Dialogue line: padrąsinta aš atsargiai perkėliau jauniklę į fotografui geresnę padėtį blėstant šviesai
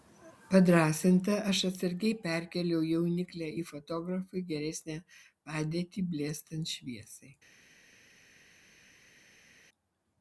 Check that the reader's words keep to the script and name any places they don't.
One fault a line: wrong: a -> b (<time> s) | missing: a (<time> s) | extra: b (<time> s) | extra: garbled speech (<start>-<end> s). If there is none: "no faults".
no faults